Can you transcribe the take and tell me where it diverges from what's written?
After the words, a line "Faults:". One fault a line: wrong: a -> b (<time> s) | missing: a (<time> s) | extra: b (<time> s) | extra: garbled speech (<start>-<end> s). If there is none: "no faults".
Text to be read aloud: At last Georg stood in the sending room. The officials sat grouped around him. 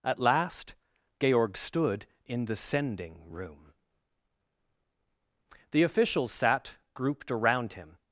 At last Georg stood in the sending room. The officials sat grouped around him.
Faults:
no faults